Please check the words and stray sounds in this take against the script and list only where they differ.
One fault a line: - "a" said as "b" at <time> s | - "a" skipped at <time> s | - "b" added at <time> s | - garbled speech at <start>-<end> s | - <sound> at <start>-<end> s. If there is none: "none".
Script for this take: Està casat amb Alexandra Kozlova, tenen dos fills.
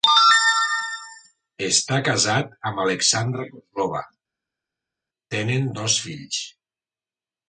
none